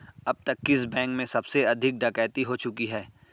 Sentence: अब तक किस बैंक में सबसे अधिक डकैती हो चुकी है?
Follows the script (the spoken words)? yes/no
yes